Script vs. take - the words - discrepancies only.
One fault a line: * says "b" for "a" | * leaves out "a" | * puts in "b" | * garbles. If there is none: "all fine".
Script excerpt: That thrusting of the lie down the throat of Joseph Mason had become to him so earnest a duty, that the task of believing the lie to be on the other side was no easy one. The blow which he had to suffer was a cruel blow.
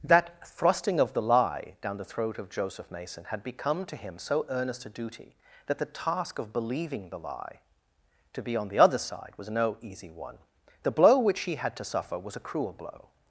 all fine